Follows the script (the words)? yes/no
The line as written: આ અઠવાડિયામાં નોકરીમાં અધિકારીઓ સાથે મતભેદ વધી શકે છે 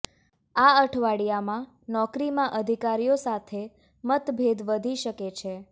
yes